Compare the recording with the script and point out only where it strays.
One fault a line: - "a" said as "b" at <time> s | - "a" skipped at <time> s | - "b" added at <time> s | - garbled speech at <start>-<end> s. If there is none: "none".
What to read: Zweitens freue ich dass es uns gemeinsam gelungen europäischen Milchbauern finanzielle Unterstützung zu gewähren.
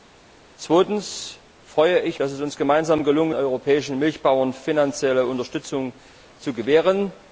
none